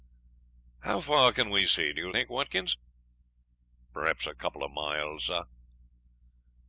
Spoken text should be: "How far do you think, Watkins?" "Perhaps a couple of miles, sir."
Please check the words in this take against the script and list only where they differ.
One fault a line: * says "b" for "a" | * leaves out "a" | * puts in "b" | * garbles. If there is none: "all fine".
* puts in "can we see"